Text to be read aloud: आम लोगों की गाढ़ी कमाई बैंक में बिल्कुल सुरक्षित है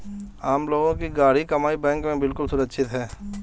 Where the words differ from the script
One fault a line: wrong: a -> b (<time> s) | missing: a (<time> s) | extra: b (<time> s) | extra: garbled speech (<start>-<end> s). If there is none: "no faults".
no faults